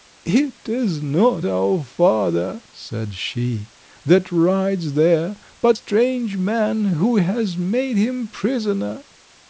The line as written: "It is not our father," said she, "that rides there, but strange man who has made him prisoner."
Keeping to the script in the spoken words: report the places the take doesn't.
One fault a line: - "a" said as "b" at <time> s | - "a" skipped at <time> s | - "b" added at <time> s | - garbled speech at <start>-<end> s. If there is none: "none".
none